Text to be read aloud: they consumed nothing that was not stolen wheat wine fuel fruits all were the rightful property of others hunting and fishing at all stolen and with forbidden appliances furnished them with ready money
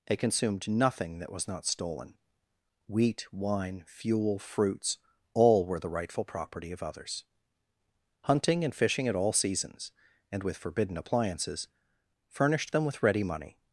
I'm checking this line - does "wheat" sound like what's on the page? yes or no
yes